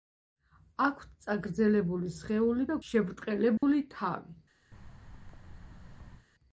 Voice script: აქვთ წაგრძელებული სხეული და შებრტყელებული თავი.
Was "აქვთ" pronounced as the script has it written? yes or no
yes